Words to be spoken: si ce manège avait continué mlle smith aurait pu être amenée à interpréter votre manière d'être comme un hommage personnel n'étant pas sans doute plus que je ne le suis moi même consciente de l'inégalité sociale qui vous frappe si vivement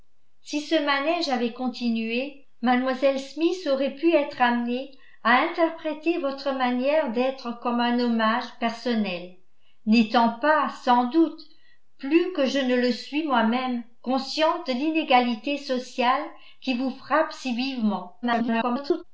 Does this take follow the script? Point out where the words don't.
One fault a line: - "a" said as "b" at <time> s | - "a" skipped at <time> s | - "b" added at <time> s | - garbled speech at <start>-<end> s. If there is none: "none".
- garbled speech at 18.2-19.0 s